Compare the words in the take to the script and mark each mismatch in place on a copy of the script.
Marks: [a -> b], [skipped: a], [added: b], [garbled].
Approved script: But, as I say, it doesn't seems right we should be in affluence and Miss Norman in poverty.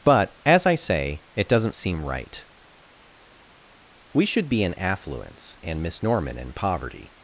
But, as I say, it doesn't [seems -> seem] right we should be in affluence and Miss Norman in poverty.